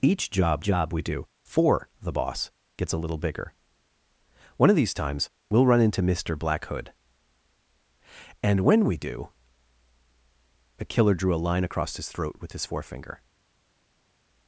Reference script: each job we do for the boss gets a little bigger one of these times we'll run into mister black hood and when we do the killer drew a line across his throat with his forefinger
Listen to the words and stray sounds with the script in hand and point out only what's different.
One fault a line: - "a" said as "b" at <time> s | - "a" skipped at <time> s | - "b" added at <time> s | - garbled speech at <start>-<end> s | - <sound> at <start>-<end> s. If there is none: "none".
- "job" added at 0.6 s